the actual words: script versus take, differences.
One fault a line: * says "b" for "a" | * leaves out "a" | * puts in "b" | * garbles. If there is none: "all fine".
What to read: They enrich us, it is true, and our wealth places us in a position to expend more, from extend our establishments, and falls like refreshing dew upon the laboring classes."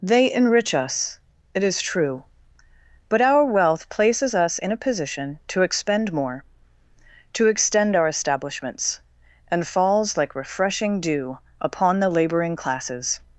* says "but" for "and"
* says "to" for "from"